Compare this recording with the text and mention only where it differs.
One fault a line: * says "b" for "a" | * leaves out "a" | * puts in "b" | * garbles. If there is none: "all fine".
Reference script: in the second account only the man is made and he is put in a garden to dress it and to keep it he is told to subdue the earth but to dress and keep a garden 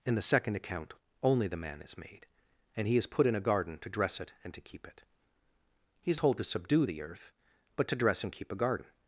all fine